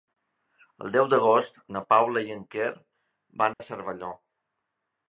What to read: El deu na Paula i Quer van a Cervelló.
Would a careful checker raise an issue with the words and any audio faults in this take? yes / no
yes